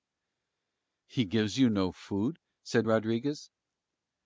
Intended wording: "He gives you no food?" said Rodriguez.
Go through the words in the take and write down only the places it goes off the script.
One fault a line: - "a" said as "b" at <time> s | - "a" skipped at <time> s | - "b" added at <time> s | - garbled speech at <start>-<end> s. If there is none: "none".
none